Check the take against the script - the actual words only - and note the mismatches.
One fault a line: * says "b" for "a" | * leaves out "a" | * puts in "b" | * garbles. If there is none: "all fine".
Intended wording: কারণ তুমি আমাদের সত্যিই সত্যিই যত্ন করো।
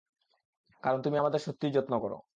* leaves out "সত্যিই"